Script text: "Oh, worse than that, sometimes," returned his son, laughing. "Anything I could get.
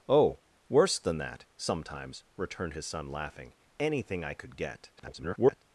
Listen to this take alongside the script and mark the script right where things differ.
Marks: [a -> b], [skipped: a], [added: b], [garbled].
"Oh, worse than that, sometimes," returned his son, laughing. "Anything I could get. [garbled]